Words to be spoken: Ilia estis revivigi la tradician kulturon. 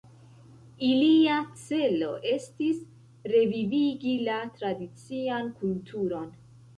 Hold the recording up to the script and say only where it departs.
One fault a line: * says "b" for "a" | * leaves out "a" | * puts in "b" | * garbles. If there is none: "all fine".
* puts in "celo"